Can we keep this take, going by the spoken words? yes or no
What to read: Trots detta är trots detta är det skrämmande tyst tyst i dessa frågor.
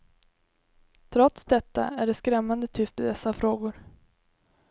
no